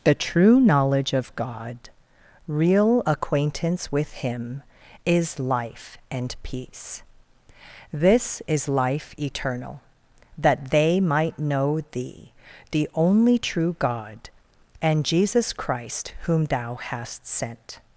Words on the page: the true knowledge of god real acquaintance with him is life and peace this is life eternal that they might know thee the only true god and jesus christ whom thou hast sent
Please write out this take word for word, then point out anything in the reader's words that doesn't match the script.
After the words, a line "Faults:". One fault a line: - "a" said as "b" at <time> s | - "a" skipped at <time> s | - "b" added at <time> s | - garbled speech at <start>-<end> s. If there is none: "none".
the true knowledge of god real acquaintance with him is life and peace this is life eternal that they might know thee the only true god and jesus christ whom thou hast sent
Faults:
none